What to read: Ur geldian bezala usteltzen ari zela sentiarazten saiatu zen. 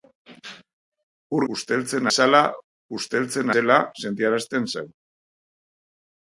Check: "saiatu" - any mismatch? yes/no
yes